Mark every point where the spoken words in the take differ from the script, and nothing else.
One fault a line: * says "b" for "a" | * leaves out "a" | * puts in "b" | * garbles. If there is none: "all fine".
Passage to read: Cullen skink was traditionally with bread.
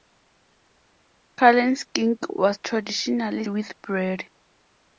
all fine